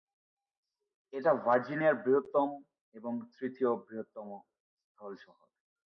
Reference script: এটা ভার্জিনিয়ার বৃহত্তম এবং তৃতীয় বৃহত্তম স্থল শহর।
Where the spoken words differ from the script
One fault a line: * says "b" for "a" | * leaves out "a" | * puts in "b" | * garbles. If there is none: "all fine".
all fine